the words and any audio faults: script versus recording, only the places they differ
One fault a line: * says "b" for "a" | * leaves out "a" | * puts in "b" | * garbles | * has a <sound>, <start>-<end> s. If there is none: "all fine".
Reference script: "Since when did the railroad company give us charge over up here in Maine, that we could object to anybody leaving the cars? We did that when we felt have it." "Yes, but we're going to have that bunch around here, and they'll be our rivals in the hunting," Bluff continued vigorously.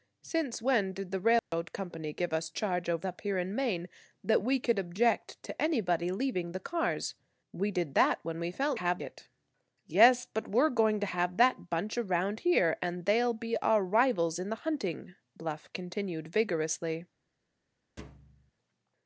* has a dropout, 1.4-1.5 s
* has a thud, 18.0-18.5 s